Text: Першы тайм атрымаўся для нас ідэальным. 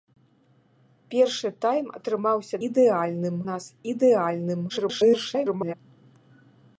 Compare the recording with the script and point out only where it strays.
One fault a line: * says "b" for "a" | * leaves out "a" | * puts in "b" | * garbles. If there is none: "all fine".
* says "ідэальным" for "для"
* garbles